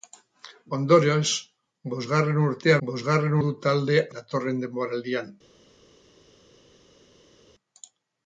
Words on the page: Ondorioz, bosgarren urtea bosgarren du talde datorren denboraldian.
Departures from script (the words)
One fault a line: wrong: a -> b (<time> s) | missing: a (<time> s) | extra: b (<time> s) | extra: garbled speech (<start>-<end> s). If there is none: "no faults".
no faults